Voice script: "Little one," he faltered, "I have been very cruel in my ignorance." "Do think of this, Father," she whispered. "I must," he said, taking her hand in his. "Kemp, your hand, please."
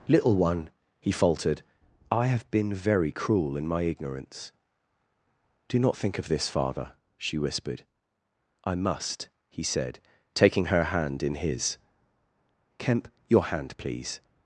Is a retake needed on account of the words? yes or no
yes